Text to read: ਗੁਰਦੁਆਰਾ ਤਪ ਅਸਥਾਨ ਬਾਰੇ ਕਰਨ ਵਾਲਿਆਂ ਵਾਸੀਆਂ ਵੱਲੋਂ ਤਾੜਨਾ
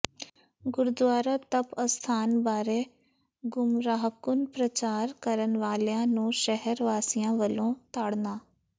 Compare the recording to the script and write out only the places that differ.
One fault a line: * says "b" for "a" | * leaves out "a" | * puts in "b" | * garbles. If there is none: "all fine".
* puts in "ਗੁੰਮਰਾਹਕੁੰਨ ਪ੍ਰਚਾਰ"
* puts in "ਨੂੰ ਸ਼ਹਿਰ"